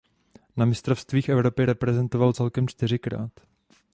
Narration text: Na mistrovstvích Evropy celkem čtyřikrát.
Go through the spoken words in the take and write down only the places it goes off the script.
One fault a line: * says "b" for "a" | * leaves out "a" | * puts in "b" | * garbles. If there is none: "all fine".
* puts in "reprezentoval"